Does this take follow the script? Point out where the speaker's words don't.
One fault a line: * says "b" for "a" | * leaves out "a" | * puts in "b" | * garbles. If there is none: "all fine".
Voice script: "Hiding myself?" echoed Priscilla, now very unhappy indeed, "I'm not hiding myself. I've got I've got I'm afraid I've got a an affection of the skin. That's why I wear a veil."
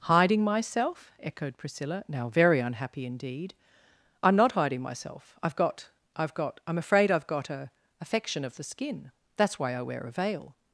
* leaves out "an"